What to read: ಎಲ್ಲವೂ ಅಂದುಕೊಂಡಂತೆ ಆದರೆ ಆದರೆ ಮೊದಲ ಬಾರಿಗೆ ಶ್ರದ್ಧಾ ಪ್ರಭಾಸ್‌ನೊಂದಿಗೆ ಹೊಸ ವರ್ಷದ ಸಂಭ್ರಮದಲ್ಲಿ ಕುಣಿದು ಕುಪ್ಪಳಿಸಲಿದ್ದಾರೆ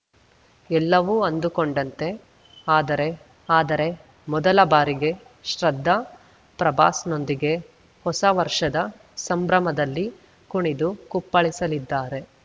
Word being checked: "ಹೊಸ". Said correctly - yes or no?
yes